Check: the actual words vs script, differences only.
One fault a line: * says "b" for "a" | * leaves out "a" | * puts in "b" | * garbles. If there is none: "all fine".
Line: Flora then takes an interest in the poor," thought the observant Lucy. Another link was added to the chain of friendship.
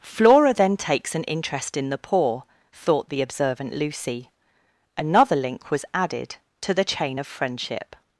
all fine